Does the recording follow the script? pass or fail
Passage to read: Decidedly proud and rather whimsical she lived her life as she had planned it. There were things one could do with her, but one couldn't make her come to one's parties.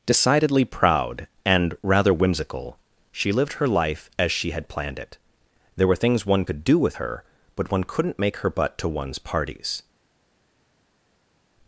fail